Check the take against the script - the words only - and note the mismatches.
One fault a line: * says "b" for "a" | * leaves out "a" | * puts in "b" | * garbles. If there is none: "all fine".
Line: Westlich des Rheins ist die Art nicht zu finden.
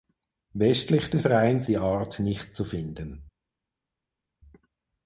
* leaves out "ist"